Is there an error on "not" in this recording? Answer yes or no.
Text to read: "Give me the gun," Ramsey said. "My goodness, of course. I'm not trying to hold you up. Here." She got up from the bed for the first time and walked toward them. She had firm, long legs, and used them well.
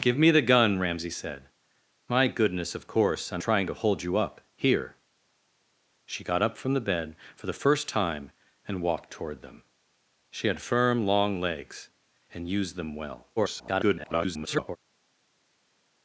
yes